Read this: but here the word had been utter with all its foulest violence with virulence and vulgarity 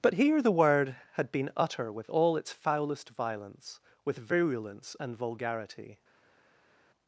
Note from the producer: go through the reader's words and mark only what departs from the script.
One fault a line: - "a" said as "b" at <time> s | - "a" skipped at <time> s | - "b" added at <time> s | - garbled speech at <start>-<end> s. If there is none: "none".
none